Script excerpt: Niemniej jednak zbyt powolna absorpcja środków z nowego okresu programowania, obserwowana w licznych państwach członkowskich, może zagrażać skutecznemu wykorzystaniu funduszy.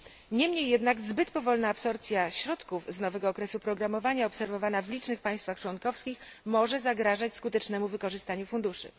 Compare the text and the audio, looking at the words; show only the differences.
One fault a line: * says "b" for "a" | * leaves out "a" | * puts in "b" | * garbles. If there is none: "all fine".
all fine